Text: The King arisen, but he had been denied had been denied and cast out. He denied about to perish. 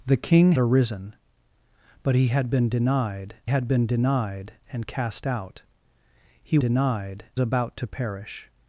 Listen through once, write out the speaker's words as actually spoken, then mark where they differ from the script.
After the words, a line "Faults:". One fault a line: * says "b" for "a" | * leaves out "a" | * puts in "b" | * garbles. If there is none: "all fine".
The King arisen, but he had been denied had been denied and cast out. He denied about to perish.
Faults:
all fine